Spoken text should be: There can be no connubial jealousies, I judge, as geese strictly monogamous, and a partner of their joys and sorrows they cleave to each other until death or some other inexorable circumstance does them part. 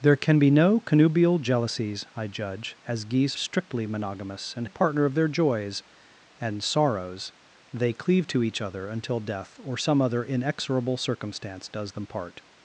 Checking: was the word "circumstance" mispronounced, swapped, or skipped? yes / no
no